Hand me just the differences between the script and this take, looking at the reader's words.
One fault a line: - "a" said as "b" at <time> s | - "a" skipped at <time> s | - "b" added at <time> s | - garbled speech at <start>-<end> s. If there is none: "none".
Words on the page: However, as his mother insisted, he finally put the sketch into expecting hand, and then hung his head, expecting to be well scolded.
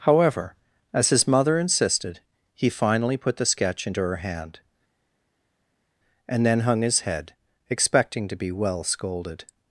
- "expecting" said as "her" at 4.0 s